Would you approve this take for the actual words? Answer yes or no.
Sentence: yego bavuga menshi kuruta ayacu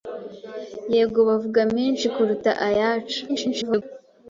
no